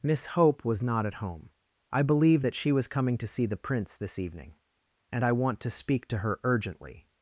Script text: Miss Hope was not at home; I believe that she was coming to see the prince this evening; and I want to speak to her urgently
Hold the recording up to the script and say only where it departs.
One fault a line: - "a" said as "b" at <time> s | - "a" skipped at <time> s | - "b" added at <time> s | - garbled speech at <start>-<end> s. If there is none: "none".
none